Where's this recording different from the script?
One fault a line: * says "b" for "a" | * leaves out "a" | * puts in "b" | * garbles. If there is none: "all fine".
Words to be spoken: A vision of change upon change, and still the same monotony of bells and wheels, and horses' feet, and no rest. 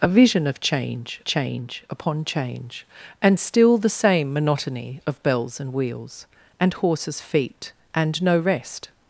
* puts in "change"